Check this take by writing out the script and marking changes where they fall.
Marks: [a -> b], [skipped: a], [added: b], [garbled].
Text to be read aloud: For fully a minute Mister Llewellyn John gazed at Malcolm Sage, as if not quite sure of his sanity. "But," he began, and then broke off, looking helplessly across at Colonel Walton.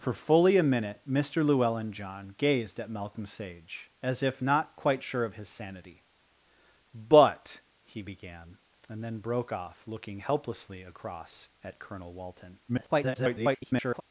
For fully a minute Mister Llewellyn John gazed at Malcolm Sage, as if not quite sure of his sanity. "But," he began, and then broke off, looking helplessly across at Colonel Walton. [garbled]